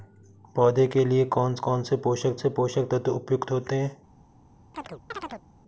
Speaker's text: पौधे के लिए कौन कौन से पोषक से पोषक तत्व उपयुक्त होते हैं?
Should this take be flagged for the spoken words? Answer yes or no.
no